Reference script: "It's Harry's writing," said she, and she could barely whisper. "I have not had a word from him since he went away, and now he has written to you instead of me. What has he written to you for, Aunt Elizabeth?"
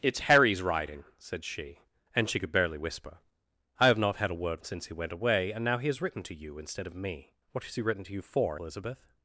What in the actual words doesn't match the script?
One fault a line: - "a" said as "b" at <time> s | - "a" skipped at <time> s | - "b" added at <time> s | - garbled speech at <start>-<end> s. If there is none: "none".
- "from him" skipped at 4.6 s
- "Aunt" skipped at 8.6 s